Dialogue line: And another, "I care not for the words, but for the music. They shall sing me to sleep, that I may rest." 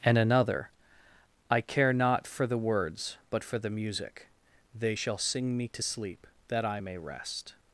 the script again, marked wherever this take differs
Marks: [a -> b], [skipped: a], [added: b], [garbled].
And another, "I care not for the words, but for the music. They shall sing me to sleep, that I may rest."